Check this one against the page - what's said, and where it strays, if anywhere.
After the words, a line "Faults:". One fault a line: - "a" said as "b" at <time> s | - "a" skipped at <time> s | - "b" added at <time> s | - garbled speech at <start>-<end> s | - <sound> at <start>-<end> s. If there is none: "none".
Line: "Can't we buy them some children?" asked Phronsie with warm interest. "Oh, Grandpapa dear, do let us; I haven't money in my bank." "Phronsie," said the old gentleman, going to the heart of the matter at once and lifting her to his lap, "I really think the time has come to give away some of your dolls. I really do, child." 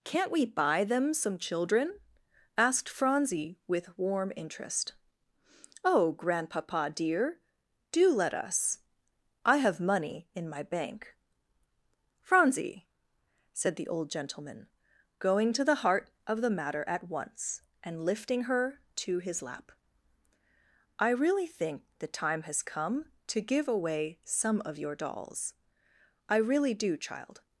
"Can't we buy them some children?" asked Phronsie with warm interest. "Oh, Grandpapa dear, do let us; I have money in my bank." "Phronsie," said the old gentleman, going to the heart of the matter at once and lifting her to his lap, "I really think the time has come to give away some of your dolls. I really do, child."
Faults:
- "haven't" said as "have" at 9.6 s